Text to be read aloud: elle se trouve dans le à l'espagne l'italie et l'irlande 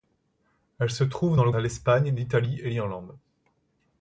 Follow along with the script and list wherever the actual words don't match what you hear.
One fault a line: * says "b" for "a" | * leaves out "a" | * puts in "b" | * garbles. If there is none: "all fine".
all fine